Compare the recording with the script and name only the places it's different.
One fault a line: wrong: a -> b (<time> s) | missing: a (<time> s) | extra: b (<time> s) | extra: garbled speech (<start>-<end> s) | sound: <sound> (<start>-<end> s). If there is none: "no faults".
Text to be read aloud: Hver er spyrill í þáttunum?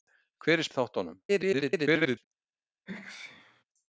missing: spyrill (0.7 s)
extra: garbled speech (1.3-2.2 s)
sound: sneeze (2.9-3.6 s)